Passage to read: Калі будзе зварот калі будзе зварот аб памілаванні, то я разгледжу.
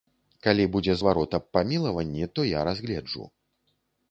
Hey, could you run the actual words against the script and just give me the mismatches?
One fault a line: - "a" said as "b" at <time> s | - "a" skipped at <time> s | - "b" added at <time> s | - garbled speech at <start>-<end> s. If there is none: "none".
- "калі будзе зварот" skipped at 1.3 s